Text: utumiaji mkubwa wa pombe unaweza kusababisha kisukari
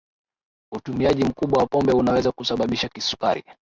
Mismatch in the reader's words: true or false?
false